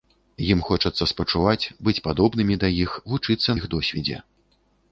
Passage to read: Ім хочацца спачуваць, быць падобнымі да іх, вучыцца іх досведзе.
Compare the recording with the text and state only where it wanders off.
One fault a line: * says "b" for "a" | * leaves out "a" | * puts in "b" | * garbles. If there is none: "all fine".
all fine